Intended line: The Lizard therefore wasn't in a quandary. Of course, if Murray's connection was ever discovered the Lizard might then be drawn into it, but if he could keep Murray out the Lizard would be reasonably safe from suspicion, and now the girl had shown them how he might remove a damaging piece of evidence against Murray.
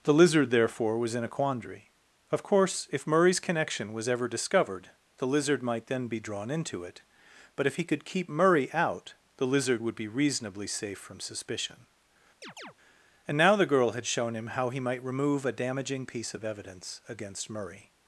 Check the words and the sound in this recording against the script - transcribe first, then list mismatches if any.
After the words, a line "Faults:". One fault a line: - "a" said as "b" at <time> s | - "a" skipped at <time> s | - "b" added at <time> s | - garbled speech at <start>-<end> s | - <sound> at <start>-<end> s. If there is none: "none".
The Lizard therefore was in a quandary. Of course, if Murray's connection was ever discovered the Lizard might then be drawn into it, but if he could keep Murray out the Lizard would be reasonably safe from suspicion, and now the girl had shown him how he might remove a damaging piece of evidence against Murray.
Faults:
- "wasn't" said as "was" at 1.0 s
- chirp at 12.4-12.7 s
- "them" said as "him" at 14.4 s